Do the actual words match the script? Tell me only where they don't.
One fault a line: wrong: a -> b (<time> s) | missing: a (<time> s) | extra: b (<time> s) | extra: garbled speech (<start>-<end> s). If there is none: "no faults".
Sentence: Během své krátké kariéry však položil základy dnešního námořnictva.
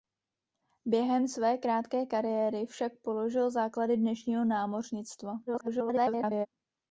extra: garbled speech (5.5-6.5 s)